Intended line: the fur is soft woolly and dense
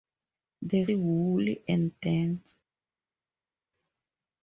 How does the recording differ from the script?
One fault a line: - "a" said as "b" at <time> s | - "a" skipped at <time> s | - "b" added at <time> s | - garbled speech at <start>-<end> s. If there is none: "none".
- "fur is soft" skipped at 0.8 s